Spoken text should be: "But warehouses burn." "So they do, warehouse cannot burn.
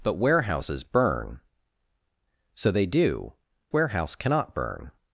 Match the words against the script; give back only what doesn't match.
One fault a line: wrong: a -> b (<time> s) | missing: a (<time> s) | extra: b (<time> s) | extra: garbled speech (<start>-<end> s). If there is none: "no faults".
no faults